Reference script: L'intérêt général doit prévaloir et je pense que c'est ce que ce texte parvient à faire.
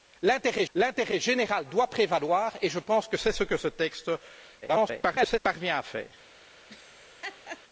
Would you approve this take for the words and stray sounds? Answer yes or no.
no